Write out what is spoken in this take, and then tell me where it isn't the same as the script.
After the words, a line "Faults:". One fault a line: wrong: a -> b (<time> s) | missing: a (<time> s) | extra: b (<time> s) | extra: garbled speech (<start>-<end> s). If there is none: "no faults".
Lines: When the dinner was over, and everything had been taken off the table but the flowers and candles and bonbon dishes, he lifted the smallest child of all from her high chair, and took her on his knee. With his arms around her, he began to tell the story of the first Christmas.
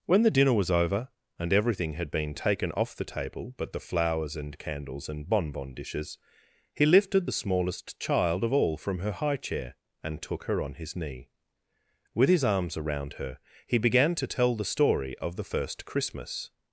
When the dinner was over, and everything had been taken off the table but the flowers and candles and bonbon dishes, he lifted the smallest child of all from her high chair, and took her on his knee. With his arms around her, he began to tell the story of the first Christmas.
Faults:
no faults